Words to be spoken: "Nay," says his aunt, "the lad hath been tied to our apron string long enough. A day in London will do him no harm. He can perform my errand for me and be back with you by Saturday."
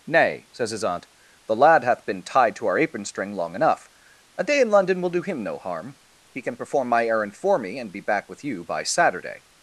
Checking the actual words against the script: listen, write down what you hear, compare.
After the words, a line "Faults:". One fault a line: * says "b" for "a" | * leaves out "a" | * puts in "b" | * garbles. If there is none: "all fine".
"Nay," says his aunt, "the lad hath been tied to our apron string long enough. A day in London will do him no harm. He can perform my errand for me and be back with you by Saturday."
Faults:
all fine